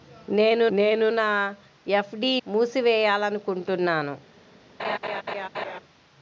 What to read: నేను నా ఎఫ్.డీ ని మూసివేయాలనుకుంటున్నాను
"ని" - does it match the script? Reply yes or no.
no